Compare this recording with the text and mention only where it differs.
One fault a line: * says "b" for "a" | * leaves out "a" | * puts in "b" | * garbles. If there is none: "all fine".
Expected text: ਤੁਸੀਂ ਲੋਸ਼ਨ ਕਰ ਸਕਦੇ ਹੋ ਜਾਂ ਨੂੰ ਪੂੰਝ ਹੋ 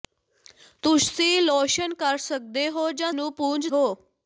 all fine